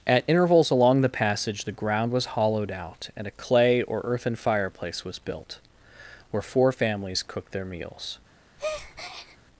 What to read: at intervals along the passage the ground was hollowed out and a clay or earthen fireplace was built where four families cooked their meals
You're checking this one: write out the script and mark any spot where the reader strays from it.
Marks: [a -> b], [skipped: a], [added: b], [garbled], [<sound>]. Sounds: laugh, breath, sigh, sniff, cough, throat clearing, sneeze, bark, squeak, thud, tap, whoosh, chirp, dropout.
at intervals along the passage the ground was hollowed out and a clay or earthen fireplace was built where four families cooked their meals [breath]